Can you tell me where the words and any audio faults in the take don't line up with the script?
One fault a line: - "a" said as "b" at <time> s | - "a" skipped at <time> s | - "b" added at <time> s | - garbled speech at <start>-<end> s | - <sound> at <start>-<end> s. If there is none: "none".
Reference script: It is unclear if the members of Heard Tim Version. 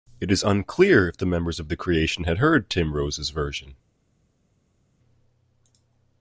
- "The Creation had" added at 1.7 s
- "Rose's" added at 2.9 s